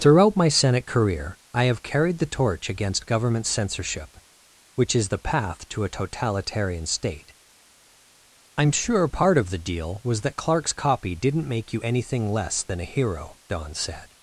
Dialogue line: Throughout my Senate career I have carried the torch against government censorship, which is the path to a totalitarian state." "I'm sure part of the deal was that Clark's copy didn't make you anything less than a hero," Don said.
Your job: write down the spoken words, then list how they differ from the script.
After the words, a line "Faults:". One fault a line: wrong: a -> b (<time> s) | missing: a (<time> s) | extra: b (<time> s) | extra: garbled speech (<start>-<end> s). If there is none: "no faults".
Throughout my Senate career I have carried the torch against government censorship, which is the path to a totalitarian state." "I'm sure part of the deal was that Clark's copy didn't make you anything less than a hero," Don said.
Faults:
no faults